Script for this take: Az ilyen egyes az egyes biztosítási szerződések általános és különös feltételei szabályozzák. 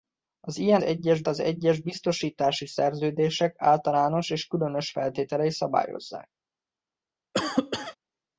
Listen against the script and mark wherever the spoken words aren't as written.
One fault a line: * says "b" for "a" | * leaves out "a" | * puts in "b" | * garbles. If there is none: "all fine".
all fine